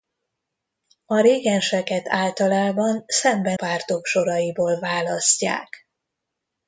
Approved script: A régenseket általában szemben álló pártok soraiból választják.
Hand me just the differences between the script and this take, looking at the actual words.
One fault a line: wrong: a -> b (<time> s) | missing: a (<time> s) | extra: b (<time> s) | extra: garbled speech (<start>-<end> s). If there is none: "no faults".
missing: álló (3.6 s)